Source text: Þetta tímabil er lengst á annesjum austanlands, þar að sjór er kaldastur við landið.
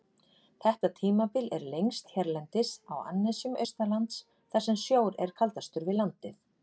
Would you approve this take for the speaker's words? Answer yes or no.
no